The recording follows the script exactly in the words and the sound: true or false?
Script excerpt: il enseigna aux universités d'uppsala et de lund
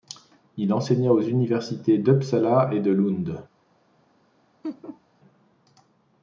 false